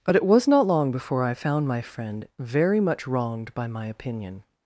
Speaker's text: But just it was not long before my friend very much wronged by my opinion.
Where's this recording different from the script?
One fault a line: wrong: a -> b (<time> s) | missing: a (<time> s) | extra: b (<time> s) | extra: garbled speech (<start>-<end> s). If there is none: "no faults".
missing: just (0.1 s)
extra: I found (1.2 s)